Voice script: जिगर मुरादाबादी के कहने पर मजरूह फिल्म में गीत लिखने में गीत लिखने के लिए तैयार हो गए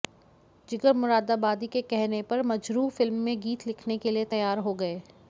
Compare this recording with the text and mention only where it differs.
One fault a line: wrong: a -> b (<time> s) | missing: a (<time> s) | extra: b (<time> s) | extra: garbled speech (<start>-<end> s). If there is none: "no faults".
missing: में गीत लिखने (4.0 s)